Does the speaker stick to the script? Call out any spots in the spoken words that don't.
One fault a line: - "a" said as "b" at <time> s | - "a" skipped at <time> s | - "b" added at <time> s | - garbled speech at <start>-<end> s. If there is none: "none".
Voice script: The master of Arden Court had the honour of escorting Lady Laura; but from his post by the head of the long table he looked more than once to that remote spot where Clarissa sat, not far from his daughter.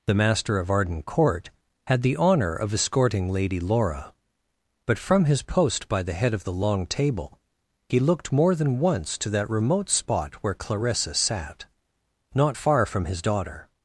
none